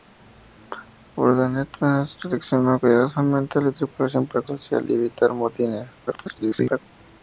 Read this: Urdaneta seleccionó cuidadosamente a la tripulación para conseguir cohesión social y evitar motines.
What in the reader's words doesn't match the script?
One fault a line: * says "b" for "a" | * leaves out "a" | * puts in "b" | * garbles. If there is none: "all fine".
* leaves out "conseguir cohesión"
* garbles